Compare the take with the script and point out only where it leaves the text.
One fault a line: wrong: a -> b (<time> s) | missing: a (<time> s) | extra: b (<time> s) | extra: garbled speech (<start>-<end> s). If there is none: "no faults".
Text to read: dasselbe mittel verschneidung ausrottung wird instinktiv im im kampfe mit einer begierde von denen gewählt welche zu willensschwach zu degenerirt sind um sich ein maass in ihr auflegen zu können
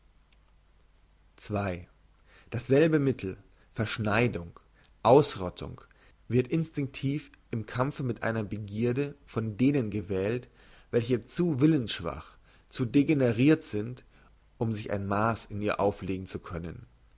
missing: im (7.7 s)